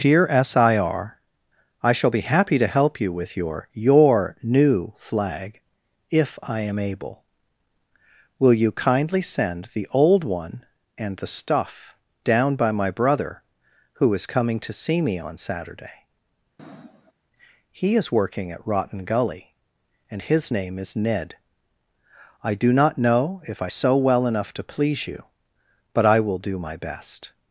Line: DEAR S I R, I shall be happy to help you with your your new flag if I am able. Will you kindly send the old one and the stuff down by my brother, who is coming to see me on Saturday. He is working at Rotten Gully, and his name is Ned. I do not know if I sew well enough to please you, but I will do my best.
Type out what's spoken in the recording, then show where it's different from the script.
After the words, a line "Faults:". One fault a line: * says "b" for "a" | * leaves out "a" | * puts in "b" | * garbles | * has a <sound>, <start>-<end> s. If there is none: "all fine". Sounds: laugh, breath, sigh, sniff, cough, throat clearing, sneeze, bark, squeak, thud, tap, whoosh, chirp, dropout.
DEAR S I R, I shall be happy to help you with your your new flag if I am able. Will you kindly send the old one and the stuff down by my brother, who is coming to see me on Saturday. He is working at Rotten Gully, and his name is Ned. I do not know if I sew well enough to please you, but I will do my best.
Faults:
* has a sniff, 16.6-17.1 s